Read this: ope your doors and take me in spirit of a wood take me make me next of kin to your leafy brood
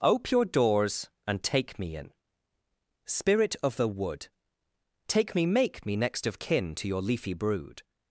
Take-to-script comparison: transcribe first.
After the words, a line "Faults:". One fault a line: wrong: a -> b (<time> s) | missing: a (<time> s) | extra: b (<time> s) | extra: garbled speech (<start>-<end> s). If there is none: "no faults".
ope your doors and take me in spirit of the wood take me make me next of kin to your leafy brood
Faults:
wrong: a -> the (3.8 s)